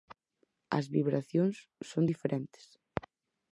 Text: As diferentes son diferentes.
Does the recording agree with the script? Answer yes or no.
no